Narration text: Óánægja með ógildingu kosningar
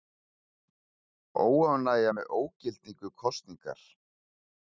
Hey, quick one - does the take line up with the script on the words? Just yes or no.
yes